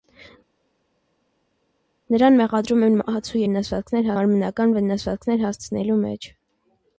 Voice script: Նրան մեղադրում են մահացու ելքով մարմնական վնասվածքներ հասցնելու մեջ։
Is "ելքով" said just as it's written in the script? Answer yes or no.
no